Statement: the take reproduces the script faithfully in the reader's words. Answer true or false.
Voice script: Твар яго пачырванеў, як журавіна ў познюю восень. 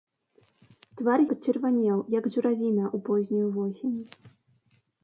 false